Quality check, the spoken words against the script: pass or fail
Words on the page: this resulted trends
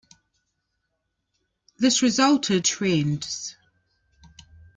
pass